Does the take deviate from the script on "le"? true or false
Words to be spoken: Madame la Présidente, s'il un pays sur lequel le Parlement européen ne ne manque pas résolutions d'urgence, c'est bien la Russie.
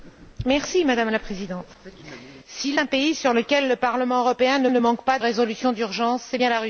false